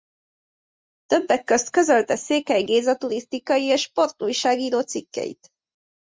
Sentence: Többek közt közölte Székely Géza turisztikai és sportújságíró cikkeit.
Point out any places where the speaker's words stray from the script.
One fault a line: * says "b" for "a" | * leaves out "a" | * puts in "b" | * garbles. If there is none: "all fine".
all fine